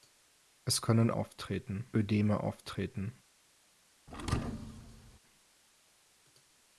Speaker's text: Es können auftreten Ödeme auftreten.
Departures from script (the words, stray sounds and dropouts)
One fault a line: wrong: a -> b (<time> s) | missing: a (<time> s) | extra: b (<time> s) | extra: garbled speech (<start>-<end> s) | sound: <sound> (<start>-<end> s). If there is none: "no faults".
sound: thud (4.1-5.2 s)